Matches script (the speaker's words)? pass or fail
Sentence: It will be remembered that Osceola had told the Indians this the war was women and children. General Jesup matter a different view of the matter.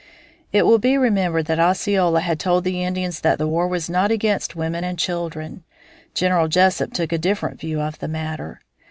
fail